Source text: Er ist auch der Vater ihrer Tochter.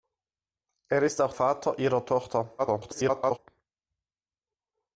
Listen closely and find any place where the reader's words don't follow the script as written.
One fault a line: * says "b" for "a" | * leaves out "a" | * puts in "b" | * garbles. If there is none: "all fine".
* leaves out "der"
* garbles